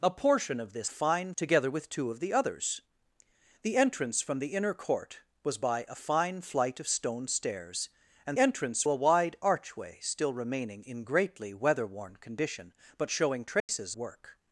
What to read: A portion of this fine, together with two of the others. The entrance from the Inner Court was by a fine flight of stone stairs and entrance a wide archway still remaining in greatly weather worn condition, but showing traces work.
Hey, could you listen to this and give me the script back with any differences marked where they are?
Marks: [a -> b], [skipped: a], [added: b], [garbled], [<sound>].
A portion of this fine, together with two of the others. The entrance from the Inner Court was by a fine flight of stone stairs and entrance a wide archway still remaining in greatly weather worn condition, but showing traces [dropout] work.